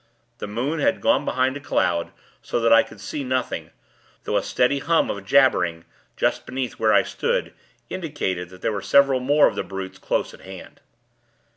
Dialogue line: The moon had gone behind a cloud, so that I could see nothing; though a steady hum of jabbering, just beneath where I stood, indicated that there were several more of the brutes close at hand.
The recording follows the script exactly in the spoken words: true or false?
true